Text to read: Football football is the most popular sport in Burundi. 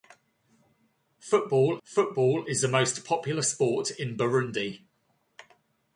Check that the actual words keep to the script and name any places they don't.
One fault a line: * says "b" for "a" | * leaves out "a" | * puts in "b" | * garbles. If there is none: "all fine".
all fine